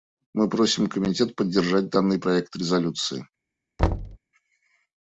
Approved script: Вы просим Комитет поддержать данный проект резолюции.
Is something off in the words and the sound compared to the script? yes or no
yes